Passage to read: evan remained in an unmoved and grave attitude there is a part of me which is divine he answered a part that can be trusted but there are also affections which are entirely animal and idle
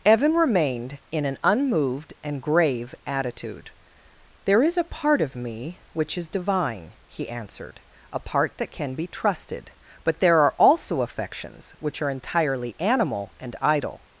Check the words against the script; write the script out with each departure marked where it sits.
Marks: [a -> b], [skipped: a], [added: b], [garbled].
evan remained in an unmoved and grave attitude there is a part of me which is divine he answered a part that can be trusted but there are also affections which are entirely animal and idle